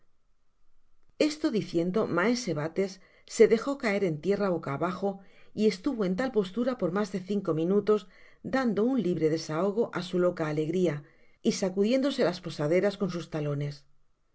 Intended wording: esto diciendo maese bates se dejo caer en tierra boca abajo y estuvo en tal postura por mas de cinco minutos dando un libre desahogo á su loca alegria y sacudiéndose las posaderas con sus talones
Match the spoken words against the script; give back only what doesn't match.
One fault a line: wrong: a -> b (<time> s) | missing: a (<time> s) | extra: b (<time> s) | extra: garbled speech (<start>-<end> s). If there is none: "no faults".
no faults